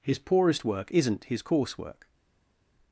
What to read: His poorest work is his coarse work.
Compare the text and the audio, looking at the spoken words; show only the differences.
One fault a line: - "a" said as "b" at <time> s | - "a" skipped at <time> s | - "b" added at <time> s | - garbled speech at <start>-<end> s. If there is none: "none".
- "is" said as "isn't" at 0.9 s